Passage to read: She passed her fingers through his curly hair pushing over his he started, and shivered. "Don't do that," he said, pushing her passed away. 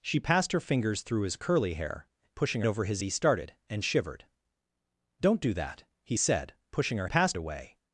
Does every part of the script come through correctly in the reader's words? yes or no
yes